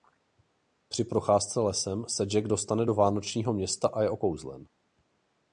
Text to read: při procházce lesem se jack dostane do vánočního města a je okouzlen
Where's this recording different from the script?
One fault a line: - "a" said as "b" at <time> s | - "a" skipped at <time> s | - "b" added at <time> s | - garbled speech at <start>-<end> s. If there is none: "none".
none